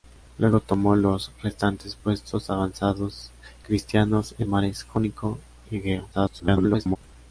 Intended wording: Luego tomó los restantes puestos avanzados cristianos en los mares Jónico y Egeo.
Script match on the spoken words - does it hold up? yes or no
no